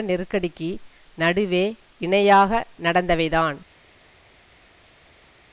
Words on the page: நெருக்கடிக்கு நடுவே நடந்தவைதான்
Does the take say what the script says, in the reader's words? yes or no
no